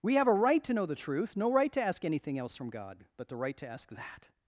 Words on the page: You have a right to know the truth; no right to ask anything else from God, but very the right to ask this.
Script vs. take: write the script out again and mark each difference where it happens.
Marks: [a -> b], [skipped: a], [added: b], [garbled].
[You -> We] have a right to know the truth; no right to ask anything else from God, but [skipped: very] the right to ask [this. -> that]